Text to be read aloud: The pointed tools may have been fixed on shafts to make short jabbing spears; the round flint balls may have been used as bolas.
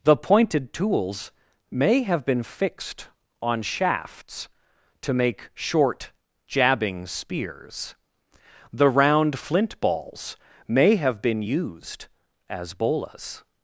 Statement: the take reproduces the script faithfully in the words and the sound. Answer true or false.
true